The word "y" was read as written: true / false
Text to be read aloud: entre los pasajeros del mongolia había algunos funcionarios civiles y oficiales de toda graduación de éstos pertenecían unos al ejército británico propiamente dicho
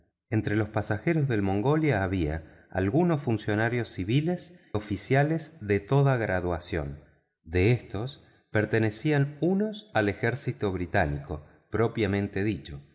false